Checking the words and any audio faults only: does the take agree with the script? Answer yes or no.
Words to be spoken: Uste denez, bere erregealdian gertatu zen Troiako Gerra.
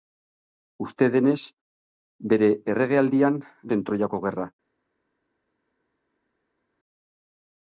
no